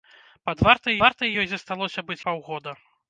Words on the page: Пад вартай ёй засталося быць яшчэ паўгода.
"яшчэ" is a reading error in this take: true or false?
true